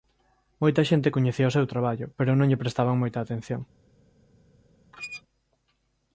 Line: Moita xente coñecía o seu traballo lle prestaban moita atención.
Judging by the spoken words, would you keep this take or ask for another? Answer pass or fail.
fail